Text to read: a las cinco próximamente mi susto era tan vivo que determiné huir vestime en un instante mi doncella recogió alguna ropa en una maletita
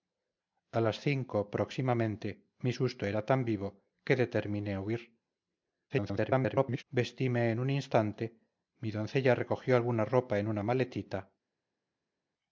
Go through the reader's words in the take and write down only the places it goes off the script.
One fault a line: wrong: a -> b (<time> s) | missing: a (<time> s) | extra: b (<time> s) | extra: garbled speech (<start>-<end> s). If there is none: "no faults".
extra: garbled speech (5.9-6.8 s)